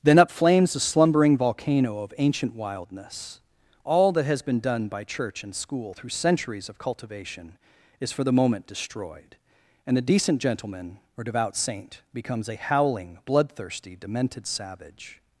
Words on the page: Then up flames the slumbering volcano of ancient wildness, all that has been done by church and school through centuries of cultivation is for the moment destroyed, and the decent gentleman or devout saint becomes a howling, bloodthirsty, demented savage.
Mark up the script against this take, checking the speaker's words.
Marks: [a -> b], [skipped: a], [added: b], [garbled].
Then up flames the slumbering volcano of ancient wildness, all that has been done by church and school through centuries of cultivation is for the moment destroyed, and the decent gentleman or devout saint becomes a howling, bloodthirsty, demented savage.